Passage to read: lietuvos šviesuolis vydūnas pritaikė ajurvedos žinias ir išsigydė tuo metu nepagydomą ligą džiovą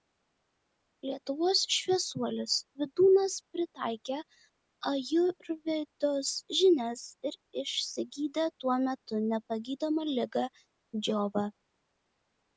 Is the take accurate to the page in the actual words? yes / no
yes